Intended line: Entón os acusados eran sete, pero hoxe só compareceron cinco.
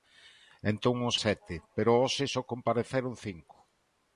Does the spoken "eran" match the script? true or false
false